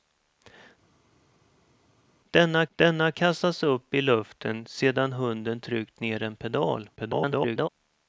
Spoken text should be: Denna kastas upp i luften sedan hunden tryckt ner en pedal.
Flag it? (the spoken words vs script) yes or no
yes